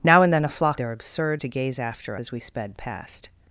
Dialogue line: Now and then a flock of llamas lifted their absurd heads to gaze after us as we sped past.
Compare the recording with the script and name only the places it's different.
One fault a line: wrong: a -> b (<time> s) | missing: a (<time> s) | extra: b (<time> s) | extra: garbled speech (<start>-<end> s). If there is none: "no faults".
missing: of llamas lifted (0.8 s)
missing: heads (1.4 s)
missing: us (2.2 s)